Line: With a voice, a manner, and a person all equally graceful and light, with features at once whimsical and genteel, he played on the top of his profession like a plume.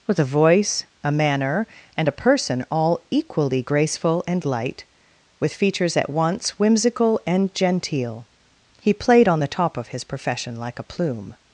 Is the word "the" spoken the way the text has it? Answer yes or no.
yes